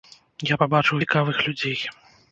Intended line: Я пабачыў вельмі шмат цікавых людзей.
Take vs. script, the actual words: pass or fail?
fail